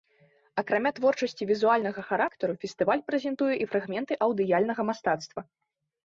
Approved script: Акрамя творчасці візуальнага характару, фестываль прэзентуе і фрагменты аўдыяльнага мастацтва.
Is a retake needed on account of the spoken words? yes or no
no